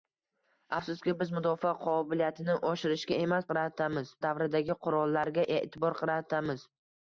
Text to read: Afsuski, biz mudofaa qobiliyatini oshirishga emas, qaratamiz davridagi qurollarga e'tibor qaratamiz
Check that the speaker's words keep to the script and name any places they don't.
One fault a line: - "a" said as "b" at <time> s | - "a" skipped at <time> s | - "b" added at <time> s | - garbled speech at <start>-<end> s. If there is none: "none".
none